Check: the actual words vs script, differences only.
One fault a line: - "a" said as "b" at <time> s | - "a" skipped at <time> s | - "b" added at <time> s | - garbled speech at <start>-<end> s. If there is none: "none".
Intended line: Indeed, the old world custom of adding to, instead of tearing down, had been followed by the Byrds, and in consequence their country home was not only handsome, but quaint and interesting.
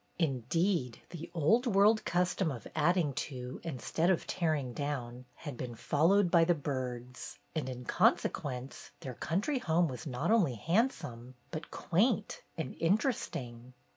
none